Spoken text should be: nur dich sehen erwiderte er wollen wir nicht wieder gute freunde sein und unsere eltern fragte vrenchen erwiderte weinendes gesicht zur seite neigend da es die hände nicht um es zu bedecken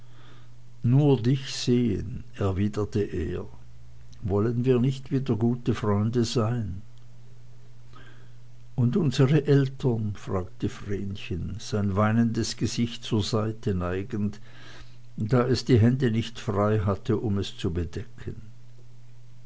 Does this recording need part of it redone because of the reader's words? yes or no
yes